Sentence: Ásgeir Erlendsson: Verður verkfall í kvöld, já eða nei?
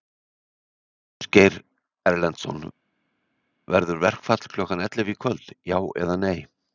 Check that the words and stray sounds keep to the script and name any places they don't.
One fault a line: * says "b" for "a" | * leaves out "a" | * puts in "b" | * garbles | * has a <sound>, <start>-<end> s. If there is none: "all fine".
* puts in "klukkan ellefu"